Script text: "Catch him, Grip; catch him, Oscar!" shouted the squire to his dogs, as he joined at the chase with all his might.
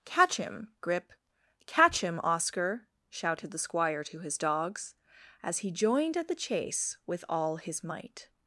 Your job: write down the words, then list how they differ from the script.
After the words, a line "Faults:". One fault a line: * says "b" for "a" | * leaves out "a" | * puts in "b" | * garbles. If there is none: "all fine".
"Catch him, Grip; catch him, Oscar!" shouted the squire to his dogs, as he joined at the chase with all his might.
Faults:
all fine